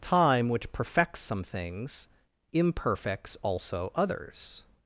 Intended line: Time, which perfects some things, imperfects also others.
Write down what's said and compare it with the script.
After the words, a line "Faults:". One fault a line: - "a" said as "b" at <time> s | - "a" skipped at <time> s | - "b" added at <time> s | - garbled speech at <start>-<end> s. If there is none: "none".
Time, which perfects some things, imperfects also others.
Faults:
none